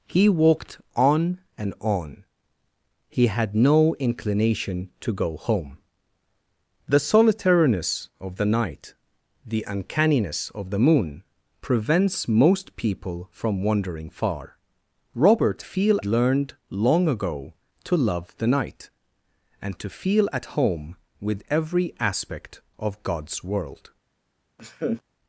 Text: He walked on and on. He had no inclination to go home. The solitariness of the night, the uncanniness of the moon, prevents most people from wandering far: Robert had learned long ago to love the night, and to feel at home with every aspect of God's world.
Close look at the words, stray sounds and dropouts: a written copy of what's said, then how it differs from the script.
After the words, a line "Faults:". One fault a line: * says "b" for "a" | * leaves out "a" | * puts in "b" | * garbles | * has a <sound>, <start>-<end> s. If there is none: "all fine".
He walked on and on. He had no inclination to go home. The solitariness of the night, the uncanniness of the moon, prevents most people from wandering far: Robert feel learned long ago to love the night, and to feel at home with every aspect of God's world.
Faults:
* says "feel" for "had"
* has a laugh, 24.6-25.0 s